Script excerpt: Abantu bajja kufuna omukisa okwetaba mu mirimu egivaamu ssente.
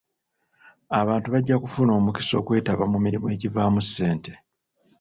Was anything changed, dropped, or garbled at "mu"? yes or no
no